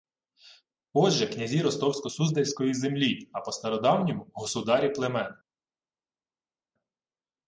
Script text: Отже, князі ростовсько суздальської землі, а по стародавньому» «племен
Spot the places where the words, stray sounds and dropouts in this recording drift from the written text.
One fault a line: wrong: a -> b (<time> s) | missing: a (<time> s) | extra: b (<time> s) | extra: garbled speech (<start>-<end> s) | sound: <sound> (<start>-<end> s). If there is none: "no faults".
extra: государі (4.3 s)